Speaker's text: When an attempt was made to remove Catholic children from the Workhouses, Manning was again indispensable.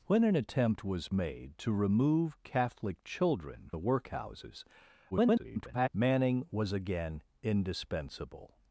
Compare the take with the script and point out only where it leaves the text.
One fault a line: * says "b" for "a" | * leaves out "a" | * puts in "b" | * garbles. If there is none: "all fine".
* leaves out "from"
* garbles